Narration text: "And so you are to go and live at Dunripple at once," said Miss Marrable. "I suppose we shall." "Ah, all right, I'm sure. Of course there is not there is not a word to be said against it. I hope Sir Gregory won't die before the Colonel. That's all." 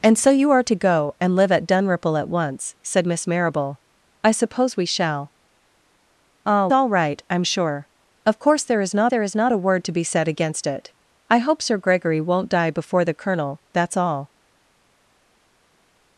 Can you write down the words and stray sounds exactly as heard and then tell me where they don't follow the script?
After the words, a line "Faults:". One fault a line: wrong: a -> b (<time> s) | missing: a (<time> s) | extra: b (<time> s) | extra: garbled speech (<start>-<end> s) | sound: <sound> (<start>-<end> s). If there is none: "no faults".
"And so you are to go and live at Dunripple at once," said Miss Marrable. "I suppose we shall." "Ah, all right, I'm sure. Of course there is not there is not a word to be said against it. I hope Sir Gregory won't die before the Colonel. That's all."
Faults:
no faults